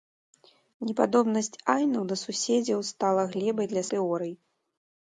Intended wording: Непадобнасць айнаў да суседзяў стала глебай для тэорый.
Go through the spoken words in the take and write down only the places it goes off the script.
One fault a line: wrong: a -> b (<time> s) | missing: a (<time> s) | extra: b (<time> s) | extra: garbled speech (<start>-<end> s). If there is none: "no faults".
no faults